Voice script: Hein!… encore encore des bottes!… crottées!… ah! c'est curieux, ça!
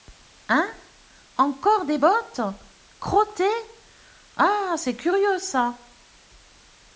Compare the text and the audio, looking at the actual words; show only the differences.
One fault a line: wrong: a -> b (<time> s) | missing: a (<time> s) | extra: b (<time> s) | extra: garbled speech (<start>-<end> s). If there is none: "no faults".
missing: encore (1.9 s)